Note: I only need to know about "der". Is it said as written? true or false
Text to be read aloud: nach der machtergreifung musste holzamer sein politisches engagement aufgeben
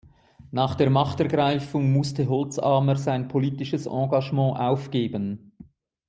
true